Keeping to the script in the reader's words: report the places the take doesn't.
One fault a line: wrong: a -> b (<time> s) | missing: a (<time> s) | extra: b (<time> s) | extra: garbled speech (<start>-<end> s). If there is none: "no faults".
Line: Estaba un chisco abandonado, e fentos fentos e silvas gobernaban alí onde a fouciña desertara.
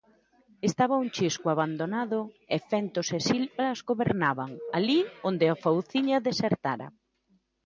missing: fentos (3.1 s)